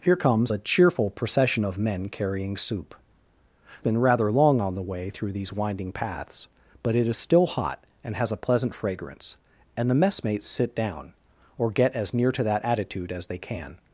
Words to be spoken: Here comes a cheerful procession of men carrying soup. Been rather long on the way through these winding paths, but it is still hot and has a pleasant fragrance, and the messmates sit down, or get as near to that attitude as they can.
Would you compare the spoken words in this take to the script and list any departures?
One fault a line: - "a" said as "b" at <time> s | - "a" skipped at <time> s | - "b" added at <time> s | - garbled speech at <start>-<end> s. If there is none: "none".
none